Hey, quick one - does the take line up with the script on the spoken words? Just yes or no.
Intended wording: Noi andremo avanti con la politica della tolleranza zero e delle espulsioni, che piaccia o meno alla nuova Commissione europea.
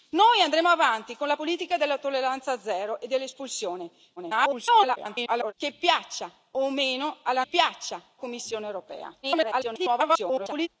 no